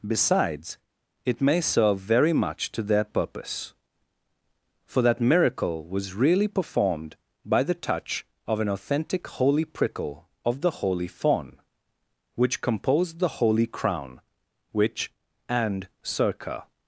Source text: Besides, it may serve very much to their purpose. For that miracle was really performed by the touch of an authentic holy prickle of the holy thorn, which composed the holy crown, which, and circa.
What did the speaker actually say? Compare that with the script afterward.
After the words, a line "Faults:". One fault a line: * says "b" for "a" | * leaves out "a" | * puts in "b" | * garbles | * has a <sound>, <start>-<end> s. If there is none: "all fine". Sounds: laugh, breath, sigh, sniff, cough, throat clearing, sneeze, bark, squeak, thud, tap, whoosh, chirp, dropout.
Besides, it may serve very much to their purpose. For that miracle was really performed by the touch of an authentic holy prickle of the holy fawn, which composed the holy crown, which, and circa.
Faults:
* says "fawn" for "thorn"